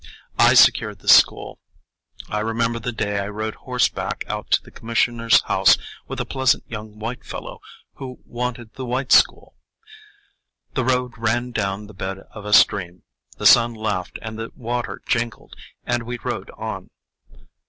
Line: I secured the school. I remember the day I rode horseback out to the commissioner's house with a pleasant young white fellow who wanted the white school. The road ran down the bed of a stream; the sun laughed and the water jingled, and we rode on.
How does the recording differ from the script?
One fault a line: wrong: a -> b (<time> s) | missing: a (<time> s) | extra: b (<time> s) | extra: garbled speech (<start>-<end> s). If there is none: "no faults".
no faults